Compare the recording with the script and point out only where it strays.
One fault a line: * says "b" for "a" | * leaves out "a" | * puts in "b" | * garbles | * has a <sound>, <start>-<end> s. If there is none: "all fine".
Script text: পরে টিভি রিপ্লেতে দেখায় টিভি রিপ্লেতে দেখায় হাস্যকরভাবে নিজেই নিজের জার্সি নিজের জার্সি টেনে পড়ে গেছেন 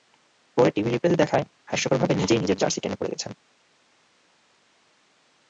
* leaves out "টিভি রিপ্লেতে দেখায়"
* leaves out "নিজের জার্সি"